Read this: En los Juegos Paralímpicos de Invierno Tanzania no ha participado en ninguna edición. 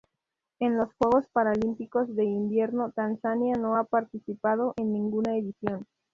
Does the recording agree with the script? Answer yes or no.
yes